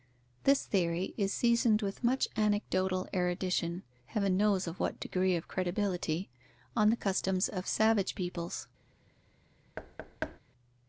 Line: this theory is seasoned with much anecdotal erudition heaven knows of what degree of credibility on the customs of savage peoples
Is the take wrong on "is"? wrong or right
right